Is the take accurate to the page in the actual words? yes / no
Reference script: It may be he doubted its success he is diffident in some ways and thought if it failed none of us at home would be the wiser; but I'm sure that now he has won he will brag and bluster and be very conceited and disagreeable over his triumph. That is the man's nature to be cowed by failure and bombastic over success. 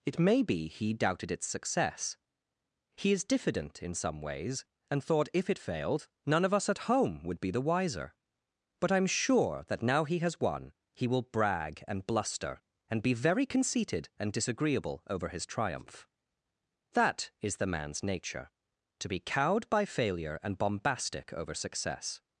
yes